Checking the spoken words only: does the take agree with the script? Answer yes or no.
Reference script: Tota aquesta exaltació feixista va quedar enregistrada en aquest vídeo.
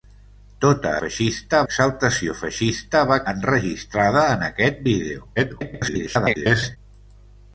no